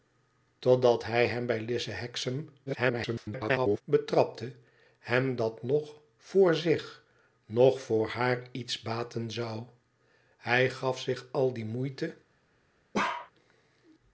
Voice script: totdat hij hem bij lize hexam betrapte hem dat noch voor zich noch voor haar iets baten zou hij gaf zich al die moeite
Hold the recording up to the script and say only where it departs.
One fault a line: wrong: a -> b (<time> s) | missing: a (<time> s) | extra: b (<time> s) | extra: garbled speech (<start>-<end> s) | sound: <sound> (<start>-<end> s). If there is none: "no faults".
extra: garbled speech (2.7-3.8 s)
sound: bark (12.9-13.3 s)